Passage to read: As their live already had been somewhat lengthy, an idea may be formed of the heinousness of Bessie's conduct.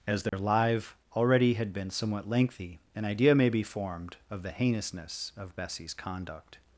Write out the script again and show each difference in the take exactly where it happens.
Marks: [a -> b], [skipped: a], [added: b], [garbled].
As their live already had been somewhat lengthy, an idea may be formed of the heinousness of Bessie's conduct.